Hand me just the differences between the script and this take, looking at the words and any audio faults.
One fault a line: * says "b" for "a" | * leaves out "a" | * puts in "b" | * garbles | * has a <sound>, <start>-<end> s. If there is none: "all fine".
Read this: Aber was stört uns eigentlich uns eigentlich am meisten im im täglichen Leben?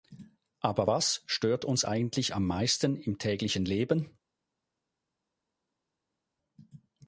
* leaves out "uns eigentlich"
* leaves out "im"